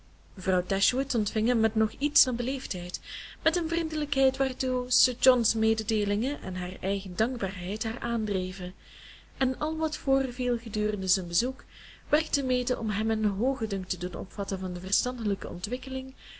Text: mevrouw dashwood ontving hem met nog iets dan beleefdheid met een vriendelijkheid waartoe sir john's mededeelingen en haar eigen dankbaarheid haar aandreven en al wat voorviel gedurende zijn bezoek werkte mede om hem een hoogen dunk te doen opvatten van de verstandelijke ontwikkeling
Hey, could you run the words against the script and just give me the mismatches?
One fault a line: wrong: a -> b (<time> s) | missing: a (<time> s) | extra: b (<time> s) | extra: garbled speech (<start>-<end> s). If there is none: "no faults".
no faults